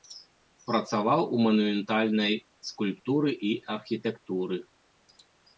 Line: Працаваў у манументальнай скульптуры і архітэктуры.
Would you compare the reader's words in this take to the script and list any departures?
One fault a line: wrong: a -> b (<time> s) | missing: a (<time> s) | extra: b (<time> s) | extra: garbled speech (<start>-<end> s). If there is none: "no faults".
no faults